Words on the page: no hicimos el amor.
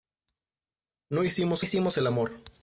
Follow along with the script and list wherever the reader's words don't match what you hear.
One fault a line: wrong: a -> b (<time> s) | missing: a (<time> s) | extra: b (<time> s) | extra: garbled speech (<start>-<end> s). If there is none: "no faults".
extra: hicimos (1.6 s)